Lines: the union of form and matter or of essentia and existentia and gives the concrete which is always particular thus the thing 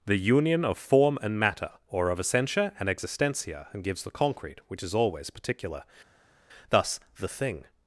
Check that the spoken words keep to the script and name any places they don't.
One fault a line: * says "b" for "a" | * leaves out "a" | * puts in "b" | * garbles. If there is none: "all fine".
all fine